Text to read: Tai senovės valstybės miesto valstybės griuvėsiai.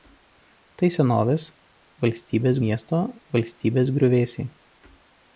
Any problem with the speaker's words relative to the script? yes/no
no